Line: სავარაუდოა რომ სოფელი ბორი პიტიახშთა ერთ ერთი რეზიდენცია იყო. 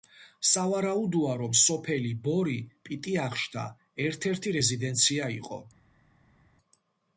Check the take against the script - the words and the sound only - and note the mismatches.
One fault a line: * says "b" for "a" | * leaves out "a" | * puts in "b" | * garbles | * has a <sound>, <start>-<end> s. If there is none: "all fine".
all fine